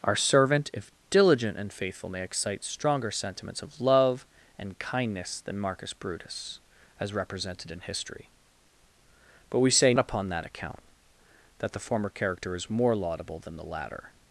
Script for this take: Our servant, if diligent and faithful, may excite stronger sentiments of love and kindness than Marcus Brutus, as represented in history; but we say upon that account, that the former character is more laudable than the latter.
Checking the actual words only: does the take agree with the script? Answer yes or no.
yes